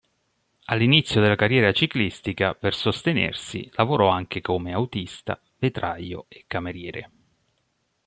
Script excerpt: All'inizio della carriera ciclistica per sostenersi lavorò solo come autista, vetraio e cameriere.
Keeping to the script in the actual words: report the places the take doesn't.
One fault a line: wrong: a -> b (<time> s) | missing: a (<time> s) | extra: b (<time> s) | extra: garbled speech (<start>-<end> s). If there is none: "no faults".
wrong: solo -> anche (4.1 s)